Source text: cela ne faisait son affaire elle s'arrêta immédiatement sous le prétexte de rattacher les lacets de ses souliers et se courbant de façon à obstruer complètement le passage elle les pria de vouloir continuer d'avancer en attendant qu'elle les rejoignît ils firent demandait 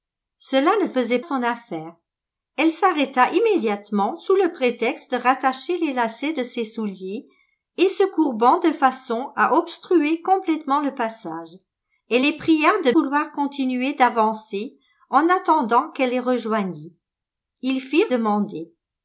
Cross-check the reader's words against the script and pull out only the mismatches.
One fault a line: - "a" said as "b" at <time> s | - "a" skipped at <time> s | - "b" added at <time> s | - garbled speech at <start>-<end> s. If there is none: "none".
none